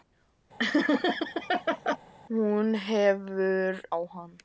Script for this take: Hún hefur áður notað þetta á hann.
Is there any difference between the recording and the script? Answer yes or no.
yes